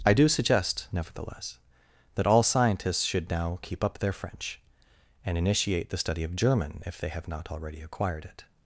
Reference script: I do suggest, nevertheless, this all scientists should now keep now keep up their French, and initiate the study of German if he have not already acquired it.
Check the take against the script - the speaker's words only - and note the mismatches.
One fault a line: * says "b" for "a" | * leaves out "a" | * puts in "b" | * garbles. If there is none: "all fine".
* says "that" for "this"
* leaves out "now keep"
* says "they" for "he"